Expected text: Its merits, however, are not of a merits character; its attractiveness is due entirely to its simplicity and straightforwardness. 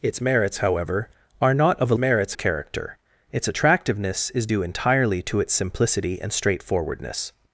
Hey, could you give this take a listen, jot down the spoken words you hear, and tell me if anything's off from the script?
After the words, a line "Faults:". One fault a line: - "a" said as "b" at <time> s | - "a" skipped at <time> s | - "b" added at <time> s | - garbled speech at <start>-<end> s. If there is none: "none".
Its merits, however, are not of a merits character; its attractiveness is due entirely to its simplicity and straightforwardness.
Faults:
none